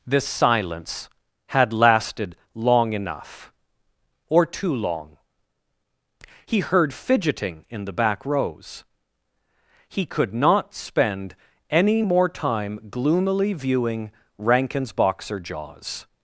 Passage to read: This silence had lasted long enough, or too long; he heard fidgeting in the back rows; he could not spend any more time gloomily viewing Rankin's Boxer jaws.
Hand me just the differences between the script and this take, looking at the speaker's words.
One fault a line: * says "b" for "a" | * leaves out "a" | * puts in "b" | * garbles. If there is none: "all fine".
all fine